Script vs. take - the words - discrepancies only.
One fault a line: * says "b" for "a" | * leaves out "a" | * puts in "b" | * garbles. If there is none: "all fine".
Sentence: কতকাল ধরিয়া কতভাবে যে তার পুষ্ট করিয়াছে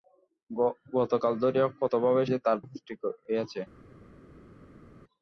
all fine